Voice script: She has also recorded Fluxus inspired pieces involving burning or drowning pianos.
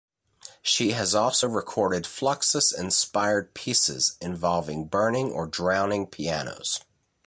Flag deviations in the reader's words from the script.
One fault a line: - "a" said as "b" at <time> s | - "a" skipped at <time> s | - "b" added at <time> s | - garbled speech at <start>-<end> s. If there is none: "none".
none